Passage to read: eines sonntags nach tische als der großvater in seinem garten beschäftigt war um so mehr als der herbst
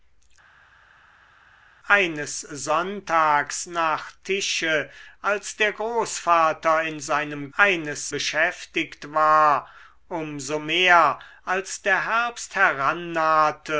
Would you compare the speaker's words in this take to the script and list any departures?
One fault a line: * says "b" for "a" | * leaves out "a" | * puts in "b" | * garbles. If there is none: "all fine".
* says "eines" for "garten"